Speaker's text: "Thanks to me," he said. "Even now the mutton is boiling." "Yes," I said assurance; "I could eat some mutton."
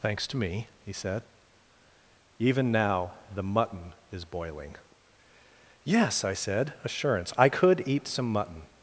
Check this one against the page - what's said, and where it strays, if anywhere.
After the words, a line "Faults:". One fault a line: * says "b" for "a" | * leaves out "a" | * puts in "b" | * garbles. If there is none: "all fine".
"Thanks to me," he said. "Even now the mutton is boiling." "Yes," I said assurance; "I could eat some mutton."
Faults:
all fine